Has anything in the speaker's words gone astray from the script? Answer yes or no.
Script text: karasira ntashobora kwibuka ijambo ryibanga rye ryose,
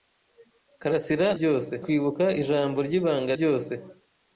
yes